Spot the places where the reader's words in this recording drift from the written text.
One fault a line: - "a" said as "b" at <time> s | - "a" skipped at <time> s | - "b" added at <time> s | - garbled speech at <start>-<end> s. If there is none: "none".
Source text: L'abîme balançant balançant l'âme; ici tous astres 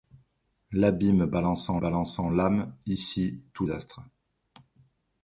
none